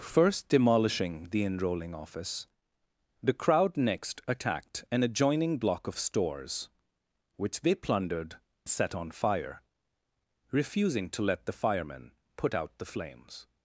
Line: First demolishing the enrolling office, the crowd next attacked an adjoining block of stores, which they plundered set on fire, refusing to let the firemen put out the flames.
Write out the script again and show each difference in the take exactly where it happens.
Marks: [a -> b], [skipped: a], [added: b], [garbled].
First demolishing the enrolling office, the crowd next attacked an adjoining block of stores, which they plundered set on fire, refusing to let the firemen put out the flames.